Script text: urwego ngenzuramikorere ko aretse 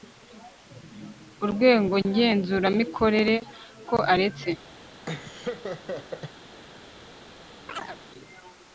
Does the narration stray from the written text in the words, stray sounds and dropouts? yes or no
yes